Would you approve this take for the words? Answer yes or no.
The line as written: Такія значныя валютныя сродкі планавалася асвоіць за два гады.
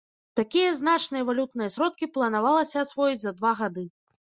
yes